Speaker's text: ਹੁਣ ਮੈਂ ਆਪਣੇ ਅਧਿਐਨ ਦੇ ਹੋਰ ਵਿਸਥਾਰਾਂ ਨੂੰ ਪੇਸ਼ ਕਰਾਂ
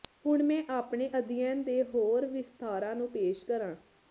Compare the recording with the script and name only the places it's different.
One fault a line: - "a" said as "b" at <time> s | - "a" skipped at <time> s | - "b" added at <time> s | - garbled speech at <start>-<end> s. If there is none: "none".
none